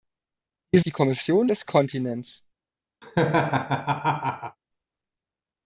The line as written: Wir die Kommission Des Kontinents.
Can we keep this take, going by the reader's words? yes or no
yes